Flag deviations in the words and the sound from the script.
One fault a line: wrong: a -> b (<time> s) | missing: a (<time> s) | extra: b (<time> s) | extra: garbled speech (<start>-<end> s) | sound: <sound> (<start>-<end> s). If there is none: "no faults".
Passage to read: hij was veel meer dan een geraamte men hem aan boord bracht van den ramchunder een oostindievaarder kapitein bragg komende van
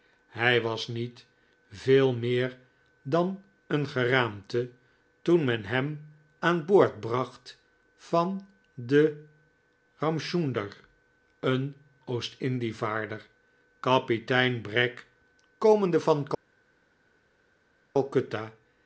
extra: niet (0.9 s)
extra: toen (5.2 s)